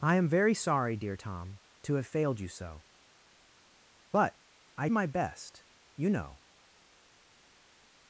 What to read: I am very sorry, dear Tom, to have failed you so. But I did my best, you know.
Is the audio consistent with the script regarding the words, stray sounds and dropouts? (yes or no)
no